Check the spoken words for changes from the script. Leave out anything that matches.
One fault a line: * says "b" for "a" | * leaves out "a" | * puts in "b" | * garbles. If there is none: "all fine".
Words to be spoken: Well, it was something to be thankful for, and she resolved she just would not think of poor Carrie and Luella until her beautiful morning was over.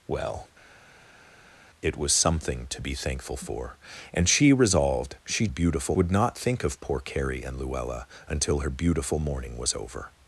* says "beautiful" for "just"